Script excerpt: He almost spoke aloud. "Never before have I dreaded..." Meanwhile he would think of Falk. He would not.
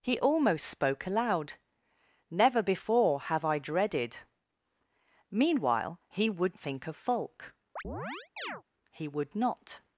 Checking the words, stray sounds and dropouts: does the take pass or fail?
fail